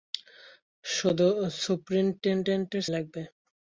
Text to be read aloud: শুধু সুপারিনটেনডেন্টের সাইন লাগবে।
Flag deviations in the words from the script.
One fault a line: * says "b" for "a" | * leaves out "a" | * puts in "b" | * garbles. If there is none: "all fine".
* leaves out "সাইন"